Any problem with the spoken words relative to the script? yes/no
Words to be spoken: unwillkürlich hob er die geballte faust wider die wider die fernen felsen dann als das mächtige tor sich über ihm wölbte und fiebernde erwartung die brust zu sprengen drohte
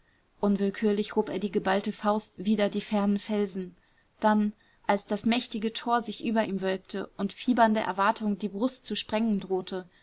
yes